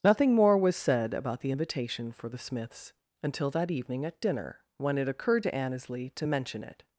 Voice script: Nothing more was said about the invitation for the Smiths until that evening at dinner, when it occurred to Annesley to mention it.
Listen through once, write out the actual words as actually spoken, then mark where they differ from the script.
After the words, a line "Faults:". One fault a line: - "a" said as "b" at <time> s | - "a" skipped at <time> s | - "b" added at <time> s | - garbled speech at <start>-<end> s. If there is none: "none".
Nothing more was said about the invitation for the Smiths until that evening at dinner, when it occurred to Annesley to mention it.
Faults:
none